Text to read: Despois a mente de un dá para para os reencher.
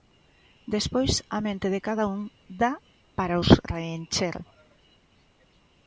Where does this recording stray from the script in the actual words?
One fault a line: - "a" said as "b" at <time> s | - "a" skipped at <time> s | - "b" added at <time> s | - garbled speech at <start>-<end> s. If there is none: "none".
- "cada" added at 1.9 s
- "para" skipped at 3.4 s